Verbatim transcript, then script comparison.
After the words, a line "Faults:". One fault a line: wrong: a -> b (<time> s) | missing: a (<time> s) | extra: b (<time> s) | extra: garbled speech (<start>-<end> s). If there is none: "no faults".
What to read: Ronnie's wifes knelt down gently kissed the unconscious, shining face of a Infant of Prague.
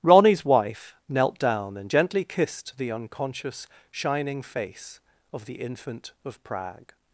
Ronnie's wife knelt down and gently kissed the unconscious, shining face of the Infant of Prague.
Faults:
wrong: wifes -> wife (0.4 s)
extra: and (1.8 s)
wrong: a -> the (5.4 s)